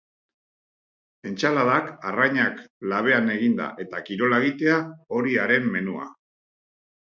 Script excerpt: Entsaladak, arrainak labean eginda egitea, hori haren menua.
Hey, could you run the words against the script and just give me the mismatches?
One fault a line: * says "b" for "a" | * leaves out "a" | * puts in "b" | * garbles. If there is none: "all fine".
* puts in "eta kirola"